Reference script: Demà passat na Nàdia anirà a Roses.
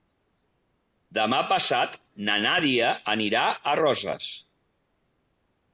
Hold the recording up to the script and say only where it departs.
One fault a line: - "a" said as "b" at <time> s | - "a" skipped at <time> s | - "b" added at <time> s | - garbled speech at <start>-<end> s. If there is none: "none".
none